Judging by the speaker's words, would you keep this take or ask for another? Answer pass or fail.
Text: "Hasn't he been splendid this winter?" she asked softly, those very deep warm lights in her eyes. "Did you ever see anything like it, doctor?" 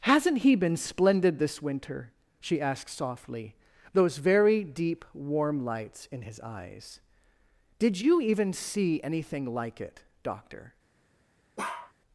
fail